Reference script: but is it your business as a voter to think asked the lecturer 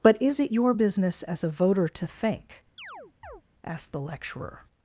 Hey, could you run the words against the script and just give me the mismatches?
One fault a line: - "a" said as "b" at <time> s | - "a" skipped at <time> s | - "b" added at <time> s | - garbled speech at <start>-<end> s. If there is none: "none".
none